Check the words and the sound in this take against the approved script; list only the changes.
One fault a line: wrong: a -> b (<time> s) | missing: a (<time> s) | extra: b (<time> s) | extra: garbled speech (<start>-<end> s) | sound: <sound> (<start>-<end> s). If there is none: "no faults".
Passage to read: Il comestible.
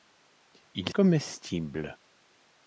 no faults